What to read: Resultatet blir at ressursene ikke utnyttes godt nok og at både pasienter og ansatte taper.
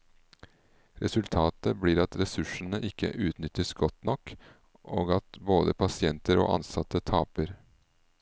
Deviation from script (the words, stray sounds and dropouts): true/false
false